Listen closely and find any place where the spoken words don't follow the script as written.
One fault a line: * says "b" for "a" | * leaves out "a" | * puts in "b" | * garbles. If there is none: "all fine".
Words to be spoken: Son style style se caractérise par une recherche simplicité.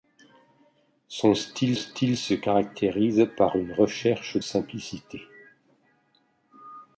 all fine